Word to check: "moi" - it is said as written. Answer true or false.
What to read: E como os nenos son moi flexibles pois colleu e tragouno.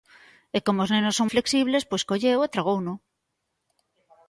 false